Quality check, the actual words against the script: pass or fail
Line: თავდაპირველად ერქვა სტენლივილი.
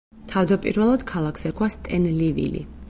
fail